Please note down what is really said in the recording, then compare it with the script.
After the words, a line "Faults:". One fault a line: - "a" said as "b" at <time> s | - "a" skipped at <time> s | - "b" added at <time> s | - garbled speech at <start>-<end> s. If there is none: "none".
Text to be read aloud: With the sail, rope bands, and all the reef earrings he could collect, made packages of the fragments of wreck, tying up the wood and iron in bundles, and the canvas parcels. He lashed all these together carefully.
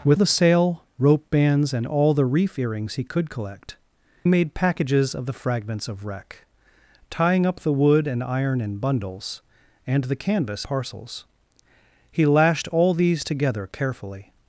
With the sail, rope bands, and all the reef earrings he could collect, made packages of the fragments of wreck, tying up the wood and iron in bundles, and the canvas parcels. He lashed all these together carefully.
Faults:
none